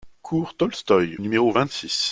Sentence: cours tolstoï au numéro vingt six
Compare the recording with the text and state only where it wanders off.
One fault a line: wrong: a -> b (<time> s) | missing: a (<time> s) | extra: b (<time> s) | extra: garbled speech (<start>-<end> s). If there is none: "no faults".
missing: au (1.2 s)